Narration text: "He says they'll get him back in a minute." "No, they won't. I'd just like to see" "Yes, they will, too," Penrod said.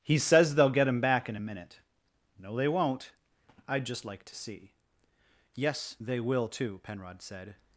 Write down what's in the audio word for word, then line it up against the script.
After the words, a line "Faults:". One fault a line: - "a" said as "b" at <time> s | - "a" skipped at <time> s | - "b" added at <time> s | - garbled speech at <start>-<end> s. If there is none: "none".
"He says they'll get him back in a minute." "No, they won't. I'd just like to see" "Yes, they will, too," Penrod said.
Faults:
none